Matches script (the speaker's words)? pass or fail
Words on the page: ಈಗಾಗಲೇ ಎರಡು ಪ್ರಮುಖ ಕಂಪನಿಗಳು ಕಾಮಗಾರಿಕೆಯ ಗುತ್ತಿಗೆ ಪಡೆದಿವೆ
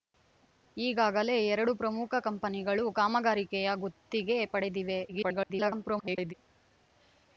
fail